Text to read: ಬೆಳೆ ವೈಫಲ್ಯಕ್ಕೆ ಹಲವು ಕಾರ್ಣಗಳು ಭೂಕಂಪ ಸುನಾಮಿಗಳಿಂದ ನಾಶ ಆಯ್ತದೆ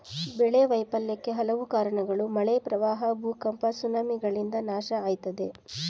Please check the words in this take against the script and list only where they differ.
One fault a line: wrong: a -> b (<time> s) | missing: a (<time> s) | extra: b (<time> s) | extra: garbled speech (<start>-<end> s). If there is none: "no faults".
extra: ಮಳೆ ಪ್ರವಾಹ (2.4 s)